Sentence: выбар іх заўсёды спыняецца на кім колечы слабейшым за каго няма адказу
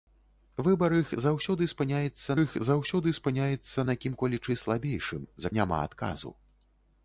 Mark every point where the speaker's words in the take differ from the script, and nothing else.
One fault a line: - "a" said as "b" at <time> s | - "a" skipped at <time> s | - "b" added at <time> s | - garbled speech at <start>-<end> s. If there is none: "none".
- "іх заўсёды спыняецца" added at 2.4 s
- "каго" skipped at 5.5 s